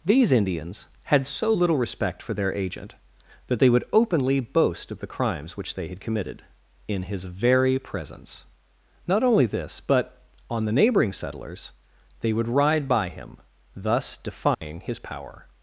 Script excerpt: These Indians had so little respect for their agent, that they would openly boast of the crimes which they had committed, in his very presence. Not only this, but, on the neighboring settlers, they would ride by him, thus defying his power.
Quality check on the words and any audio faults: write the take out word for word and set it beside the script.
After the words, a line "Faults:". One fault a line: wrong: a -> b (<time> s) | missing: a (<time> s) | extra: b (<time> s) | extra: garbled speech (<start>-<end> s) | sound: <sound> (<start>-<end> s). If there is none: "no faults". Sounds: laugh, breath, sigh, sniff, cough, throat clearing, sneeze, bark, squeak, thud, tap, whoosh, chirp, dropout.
These Indians had so little respect for their agent, that they would openly boast of the crimes which they had committed, in his very presence. Not only this, but, on the neighboring settlers, they would ride by him, thus defying his power.
Faults:
sound: dropout (14.5-14.6 s)